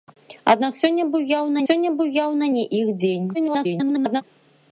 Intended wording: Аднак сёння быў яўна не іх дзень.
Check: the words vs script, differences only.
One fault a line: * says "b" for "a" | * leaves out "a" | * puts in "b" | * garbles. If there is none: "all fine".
* puts in "сёння быў яўна"
* garbles